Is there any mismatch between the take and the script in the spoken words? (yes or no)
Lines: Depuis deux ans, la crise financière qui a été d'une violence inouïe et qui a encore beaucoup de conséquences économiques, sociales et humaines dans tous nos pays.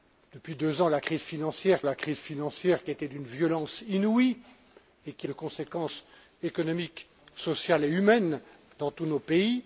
yes